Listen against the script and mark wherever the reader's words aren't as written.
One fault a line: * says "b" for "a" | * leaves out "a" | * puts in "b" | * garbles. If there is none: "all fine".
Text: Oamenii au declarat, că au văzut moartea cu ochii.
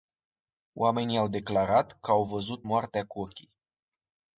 all fine